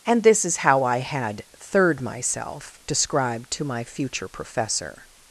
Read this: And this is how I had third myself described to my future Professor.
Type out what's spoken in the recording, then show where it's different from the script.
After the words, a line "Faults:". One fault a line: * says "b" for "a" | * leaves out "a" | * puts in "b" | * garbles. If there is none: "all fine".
And this is how I had third myself described to my future Professor.
Faults:
all fine